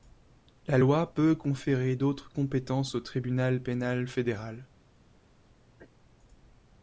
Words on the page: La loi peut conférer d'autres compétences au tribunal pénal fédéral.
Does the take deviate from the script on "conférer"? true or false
false